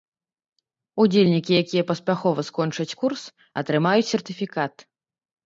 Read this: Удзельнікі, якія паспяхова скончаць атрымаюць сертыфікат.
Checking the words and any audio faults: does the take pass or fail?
fail